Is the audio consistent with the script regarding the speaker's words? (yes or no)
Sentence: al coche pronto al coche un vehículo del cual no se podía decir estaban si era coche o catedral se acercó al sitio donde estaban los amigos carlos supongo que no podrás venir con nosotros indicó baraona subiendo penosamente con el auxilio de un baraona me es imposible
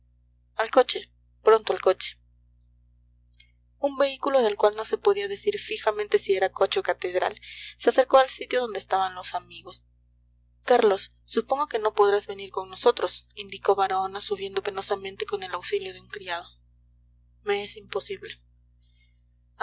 no